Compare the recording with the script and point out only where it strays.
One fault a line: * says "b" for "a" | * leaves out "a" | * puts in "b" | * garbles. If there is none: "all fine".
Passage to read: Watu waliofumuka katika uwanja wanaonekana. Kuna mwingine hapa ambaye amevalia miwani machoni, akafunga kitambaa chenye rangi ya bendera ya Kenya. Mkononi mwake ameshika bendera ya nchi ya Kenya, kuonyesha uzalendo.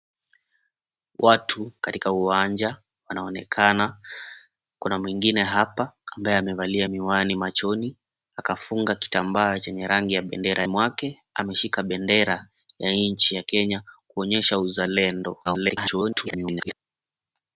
* leaves out "waliofumuka"
* leaves out "ya Kenya Mkononi"
* garbles